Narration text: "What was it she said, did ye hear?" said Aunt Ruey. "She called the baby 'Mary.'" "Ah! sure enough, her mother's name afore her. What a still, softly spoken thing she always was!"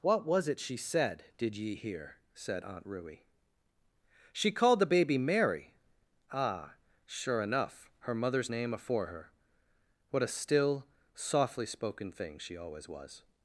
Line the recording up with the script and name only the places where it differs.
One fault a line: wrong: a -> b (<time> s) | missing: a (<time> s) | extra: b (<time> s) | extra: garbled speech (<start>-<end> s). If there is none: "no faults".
no faults